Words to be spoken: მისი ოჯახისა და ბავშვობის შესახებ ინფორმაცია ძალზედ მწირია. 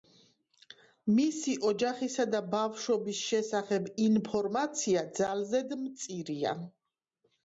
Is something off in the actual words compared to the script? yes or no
no